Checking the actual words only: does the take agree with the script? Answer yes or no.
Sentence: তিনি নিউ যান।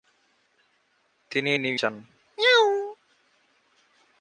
yes